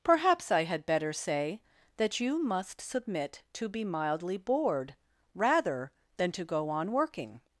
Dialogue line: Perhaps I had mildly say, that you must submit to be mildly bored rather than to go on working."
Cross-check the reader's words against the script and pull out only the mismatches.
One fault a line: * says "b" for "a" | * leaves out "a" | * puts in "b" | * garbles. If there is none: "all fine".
* says "better" for "mildly"